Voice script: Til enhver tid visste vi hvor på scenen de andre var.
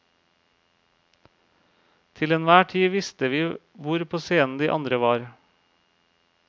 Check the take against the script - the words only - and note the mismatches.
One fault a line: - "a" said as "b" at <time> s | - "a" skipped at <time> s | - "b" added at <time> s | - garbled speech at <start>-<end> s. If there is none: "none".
none